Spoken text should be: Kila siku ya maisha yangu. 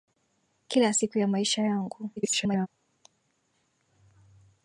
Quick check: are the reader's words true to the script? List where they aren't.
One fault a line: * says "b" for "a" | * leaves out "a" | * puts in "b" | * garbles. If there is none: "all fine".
* garbles